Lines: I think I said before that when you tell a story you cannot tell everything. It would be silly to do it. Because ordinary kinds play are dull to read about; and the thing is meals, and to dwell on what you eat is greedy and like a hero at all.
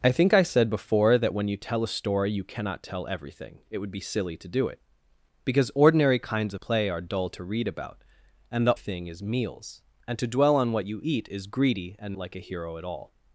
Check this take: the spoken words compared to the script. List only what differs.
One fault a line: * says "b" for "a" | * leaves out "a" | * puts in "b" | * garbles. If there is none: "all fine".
all fine